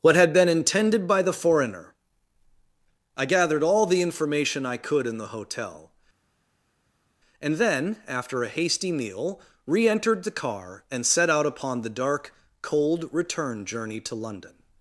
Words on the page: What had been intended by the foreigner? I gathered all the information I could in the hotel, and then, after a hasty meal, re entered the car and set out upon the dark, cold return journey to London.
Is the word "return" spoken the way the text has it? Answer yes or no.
yes